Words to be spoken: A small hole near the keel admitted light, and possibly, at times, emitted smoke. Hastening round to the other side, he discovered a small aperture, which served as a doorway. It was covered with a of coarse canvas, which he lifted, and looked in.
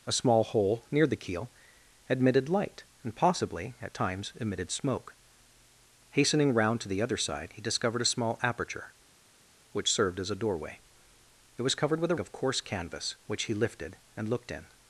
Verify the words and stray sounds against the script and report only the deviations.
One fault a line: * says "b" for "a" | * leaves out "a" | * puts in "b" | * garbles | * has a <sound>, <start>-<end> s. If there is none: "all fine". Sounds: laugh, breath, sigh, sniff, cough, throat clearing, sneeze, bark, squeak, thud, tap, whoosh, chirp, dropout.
all fine